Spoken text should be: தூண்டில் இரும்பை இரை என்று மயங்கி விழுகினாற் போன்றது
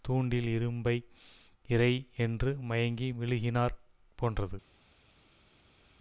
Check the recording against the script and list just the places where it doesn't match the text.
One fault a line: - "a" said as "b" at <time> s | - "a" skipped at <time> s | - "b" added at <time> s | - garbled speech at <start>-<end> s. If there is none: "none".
none